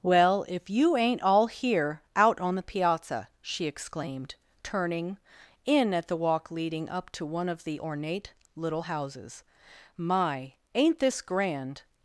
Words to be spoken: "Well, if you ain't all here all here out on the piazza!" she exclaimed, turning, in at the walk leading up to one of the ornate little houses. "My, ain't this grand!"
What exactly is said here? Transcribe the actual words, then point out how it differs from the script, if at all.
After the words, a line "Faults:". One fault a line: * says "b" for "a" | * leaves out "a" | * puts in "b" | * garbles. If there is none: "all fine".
"Well, if you ain't all here out on the piazza!" she exclaimed, turning, in at the walk leading up to one of the ornate little houses. "My, ain't this grand!"
Faults:
* leaves out "all here"